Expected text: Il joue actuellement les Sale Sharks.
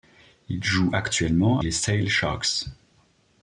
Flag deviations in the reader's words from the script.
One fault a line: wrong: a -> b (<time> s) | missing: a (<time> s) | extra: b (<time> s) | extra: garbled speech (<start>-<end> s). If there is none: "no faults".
no faults